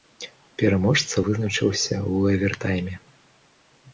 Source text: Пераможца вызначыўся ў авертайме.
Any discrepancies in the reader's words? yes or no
no